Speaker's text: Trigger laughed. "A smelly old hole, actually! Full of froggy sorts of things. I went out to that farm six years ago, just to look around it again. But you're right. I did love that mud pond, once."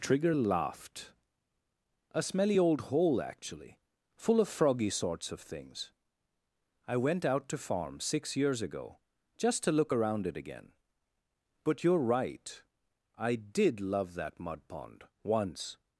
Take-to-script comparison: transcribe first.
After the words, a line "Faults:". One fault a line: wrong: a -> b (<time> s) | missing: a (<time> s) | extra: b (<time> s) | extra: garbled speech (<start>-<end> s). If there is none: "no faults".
Trigger laughed. "A smelly old hole, actually! Full of froggy sorts of things. I went out to farm six years ago, just to look around it again. But you're right. I did love that mud pond, once."
Faults:
missing: that (7.6 s)